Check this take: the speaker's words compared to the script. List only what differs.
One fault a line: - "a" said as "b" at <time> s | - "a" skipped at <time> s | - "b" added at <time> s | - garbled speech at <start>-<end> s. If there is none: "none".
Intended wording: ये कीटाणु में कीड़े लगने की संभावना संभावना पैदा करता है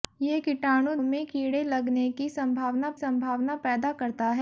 none